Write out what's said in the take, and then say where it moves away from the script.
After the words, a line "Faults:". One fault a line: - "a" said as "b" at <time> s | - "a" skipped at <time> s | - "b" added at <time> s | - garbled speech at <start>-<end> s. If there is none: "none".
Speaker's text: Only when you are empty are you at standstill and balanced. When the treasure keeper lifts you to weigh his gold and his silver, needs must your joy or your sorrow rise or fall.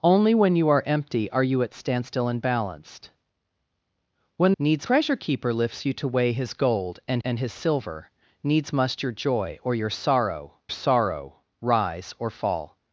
Only when you are empty are you at standstill and balanced. When needs treasure keeper lifts you to weigh his gold and and his silver, needs must your joy or your sorrow sorrow rise or fall.
Faults:
- "the" said as "needs" at 4.6 s
- "and" added at 7.2 s
- "sorrow" added at 10.7 s